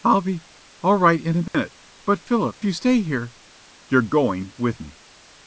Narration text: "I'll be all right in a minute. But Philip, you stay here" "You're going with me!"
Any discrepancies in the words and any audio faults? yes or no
yes